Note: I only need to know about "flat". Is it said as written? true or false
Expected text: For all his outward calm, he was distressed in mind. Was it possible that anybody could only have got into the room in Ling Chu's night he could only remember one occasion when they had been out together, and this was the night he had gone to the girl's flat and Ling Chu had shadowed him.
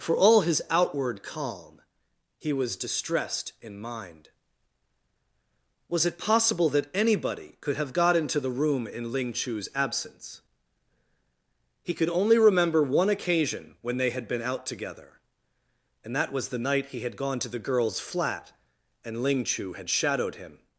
true